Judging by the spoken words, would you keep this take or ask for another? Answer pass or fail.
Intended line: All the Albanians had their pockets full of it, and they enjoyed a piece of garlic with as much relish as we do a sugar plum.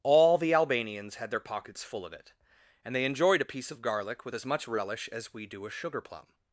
pass